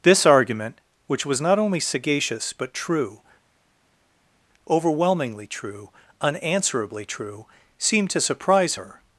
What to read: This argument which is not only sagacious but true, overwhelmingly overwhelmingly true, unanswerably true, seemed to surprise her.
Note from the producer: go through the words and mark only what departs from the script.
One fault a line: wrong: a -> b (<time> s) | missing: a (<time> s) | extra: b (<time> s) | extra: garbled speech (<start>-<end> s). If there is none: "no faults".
wrong: is -> was (1.2 s)
missing: overwhelmingly (5.5 s)